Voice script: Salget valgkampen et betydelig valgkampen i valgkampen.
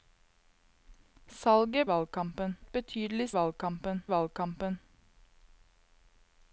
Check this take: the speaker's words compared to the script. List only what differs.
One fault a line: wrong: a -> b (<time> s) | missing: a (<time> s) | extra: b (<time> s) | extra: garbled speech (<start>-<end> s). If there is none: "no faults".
no faults